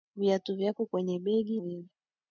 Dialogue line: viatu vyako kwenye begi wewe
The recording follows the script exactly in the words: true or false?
true